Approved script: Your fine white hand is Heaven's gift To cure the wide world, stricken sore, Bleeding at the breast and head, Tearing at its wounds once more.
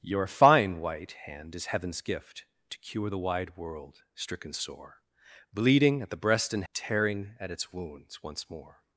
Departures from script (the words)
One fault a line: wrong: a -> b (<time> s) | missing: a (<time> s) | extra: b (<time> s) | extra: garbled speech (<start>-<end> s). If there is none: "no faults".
missing: head (6.6 s)